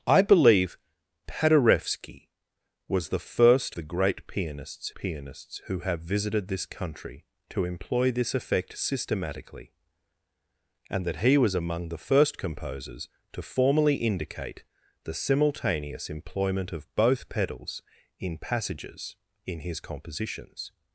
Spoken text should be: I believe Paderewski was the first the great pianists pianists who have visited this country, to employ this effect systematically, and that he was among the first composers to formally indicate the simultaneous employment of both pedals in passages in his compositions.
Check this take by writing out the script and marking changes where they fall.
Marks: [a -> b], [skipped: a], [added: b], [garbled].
I believe Paderewski was the first the great pianists pianists who have visited this country, to employ this effect systematically, and that he was among the first composers to formally indicate the simultaneous employment of both pedals in passages in his compositions.